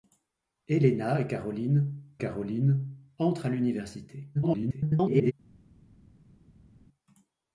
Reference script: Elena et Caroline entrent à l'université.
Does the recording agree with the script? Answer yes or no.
no